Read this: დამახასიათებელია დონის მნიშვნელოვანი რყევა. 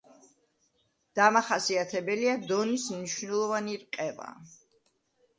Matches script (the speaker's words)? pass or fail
pass